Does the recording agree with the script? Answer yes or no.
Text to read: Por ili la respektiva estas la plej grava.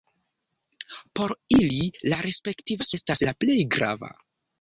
yes